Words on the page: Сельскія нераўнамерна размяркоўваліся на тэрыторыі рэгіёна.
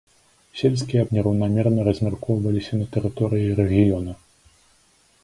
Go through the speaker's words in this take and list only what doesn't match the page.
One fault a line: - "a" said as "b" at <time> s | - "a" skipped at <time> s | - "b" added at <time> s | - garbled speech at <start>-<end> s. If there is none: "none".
none